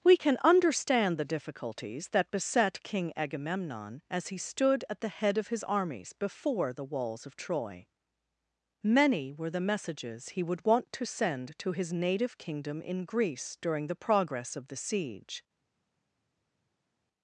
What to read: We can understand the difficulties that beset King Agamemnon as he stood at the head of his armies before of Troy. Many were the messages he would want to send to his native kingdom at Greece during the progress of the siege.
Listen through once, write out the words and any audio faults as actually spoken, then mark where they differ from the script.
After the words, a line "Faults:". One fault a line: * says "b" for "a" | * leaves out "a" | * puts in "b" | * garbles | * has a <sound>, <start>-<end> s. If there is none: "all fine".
We can understand the difficulties that beset King Agamemnon as he stood at the head of his armies before the walls of Troy. Many were the messages he would want to send to his native kingdom in Greece during the progress of the siege.
Faults:
* puts in "the walls"
* says "in" for "at"